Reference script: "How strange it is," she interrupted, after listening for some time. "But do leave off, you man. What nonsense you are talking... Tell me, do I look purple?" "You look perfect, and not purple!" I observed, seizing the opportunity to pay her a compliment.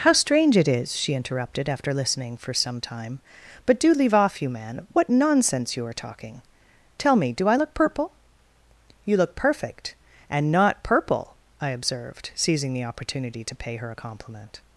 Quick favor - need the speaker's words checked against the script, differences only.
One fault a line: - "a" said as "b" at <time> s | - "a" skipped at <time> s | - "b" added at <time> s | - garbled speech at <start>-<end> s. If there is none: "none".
none